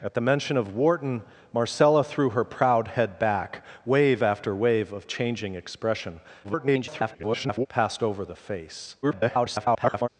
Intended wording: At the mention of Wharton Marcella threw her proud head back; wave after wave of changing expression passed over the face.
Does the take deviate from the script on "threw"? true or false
false